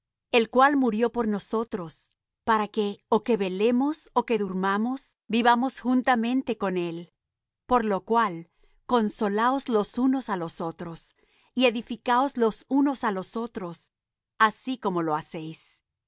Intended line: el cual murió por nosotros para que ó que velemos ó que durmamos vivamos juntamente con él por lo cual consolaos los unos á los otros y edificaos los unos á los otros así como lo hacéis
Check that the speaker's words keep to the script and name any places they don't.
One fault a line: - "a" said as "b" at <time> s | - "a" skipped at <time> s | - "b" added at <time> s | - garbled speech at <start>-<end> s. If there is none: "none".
none